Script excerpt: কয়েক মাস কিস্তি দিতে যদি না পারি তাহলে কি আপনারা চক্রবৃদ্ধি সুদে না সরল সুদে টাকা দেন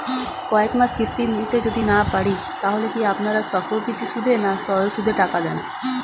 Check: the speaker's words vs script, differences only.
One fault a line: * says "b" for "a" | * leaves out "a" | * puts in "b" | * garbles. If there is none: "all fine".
all fine